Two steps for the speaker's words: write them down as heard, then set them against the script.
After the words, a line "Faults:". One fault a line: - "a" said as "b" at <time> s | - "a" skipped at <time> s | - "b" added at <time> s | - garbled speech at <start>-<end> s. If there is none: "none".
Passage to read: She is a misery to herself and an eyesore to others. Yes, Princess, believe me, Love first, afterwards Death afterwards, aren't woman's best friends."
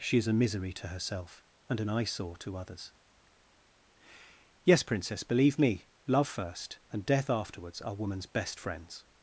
She is a misery to herself and an eyesore to others. Yes, Princess, believe me, Love first, and Death afterwards, are woman's best friends."
Faults:
- "afterwards" said as "and" at 6.9 s
- "aren't" said as "are" at 7.8 s